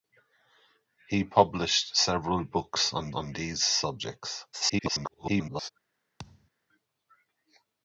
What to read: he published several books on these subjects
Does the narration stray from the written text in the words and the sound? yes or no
yes